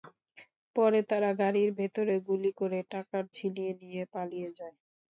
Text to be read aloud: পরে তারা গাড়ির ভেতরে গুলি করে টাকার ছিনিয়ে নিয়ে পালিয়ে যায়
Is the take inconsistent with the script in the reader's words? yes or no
no